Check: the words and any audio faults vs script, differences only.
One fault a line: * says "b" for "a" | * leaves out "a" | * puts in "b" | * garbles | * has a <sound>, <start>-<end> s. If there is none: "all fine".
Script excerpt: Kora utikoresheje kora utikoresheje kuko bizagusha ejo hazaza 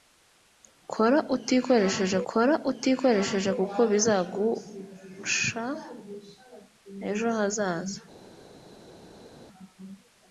all fine